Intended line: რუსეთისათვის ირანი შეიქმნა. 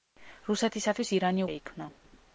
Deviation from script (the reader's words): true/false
false